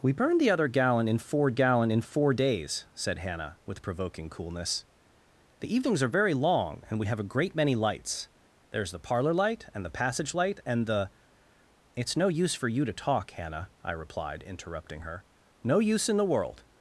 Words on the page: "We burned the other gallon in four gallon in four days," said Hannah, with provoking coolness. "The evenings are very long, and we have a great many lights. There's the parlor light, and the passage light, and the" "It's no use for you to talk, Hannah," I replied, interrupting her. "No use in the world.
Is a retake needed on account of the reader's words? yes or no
no